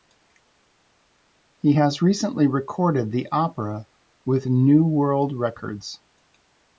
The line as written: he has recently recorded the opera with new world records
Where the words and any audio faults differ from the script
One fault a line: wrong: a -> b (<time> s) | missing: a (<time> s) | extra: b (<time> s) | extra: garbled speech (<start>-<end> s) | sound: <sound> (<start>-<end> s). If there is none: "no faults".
no faults